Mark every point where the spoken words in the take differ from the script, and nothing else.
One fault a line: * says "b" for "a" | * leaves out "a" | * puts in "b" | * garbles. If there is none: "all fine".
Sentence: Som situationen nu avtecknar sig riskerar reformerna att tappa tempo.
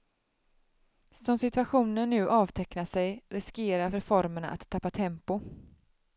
all fine